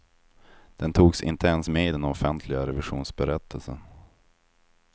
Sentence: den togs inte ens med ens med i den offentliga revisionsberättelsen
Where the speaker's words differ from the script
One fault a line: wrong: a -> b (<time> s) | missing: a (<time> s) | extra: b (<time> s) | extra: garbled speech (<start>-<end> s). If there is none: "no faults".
missing: ens med (1.9 s)